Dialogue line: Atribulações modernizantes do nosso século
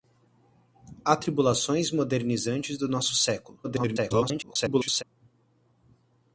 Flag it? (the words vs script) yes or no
yes